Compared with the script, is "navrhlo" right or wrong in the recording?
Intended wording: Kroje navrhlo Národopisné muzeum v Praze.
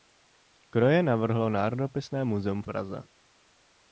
right